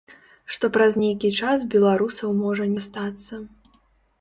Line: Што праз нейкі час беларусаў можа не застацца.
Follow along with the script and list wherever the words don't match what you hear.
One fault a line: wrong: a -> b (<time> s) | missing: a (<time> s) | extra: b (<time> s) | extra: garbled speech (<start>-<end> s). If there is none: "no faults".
missing: не (2.7 s)